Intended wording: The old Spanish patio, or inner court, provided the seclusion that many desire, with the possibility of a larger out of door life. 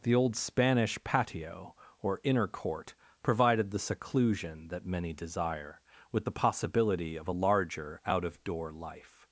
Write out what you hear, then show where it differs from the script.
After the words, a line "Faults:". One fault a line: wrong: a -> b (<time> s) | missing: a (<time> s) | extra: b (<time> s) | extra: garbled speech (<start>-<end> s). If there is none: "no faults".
The old Spanish patio, or inner court, provided the seclusion that many desire, with the possibility of a larger out of door life.
Faults:
no faults